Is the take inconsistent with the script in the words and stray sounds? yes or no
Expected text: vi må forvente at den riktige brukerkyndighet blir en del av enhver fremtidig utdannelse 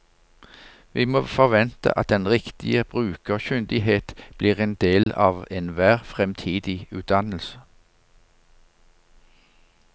yes